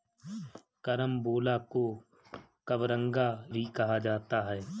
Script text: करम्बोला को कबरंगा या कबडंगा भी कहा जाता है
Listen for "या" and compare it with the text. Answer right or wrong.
wrong